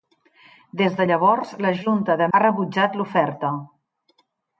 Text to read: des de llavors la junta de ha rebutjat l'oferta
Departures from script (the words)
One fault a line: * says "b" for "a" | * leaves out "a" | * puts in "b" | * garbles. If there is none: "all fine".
all fine